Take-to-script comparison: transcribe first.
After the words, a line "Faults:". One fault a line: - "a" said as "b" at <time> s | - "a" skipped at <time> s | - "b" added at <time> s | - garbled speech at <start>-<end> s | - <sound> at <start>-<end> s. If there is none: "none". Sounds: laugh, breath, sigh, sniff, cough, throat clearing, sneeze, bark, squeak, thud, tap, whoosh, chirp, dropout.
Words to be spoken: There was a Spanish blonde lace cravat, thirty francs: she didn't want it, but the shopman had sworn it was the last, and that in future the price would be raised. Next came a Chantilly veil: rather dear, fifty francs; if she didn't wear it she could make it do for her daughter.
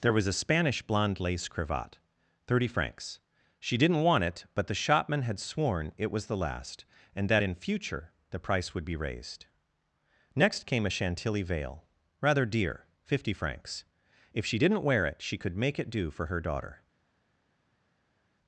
There was a Spanish blonde lace cravat, thirty francs: she didn't want it, but the shopman had sworn it was the last, and that in future the price would be raised. Next came a Chantilly veil: rather dear, fifty francs; if she didn't wear it she could make it do for her daughter.
Faults:
none